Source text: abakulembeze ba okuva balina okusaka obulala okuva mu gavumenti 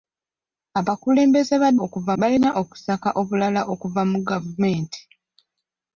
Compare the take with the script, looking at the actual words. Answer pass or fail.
pass